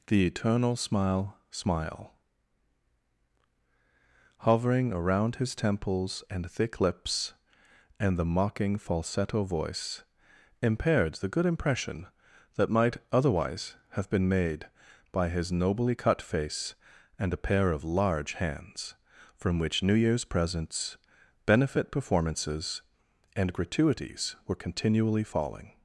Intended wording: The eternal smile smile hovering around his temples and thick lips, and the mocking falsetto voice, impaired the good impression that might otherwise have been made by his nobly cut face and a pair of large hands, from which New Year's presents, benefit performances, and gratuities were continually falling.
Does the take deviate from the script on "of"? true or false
false